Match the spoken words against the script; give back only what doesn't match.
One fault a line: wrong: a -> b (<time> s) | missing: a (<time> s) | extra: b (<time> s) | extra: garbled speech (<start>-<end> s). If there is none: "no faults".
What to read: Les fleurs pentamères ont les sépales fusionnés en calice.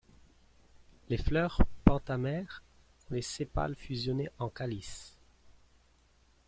no faults